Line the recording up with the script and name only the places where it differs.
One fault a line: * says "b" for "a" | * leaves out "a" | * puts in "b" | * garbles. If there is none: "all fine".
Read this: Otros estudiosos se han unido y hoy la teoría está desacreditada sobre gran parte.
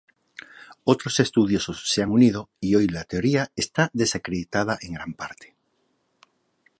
* says "en" for "sobre"